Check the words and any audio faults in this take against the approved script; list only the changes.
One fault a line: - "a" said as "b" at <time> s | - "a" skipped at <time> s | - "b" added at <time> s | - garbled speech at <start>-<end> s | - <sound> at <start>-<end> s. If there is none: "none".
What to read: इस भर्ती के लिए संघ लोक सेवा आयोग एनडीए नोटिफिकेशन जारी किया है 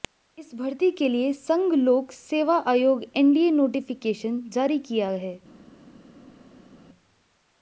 none